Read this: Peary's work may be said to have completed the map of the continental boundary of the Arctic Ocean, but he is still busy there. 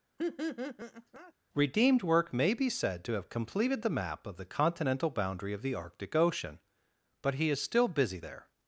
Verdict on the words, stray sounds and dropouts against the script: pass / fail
fail